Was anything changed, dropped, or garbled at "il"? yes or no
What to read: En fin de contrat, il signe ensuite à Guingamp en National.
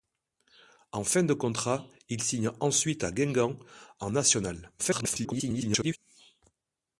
no